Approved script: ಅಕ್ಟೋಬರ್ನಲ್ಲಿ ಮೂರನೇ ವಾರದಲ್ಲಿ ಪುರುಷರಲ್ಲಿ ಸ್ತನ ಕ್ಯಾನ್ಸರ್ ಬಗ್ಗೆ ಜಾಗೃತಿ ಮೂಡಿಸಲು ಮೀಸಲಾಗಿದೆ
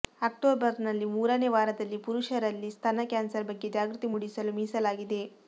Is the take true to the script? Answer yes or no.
yes